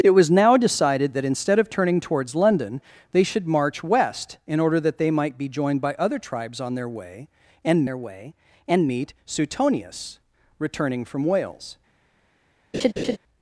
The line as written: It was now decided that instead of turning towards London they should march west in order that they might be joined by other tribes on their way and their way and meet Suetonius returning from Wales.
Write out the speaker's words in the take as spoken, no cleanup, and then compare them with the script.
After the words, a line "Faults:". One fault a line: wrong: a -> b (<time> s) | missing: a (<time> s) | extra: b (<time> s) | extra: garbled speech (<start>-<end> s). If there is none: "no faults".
It was now decided that instead of turning towards London they should march west in order that they might be joined by other tribes on their way and their way and meet Suetonius returning from Wales.
Faults:
no faults